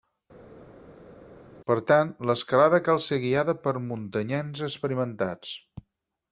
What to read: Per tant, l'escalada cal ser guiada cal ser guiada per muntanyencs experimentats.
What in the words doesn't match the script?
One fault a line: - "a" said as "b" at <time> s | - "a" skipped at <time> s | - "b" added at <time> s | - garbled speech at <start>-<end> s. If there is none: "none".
- "cal ser guiada" skipped at 3.5 s